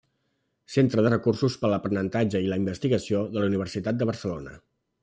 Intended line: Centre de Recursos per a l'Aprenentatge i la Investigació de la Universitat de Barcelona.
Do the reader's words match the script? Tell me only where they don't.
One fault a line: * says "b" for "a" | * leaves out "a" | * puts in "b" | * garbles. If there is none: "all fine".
all fine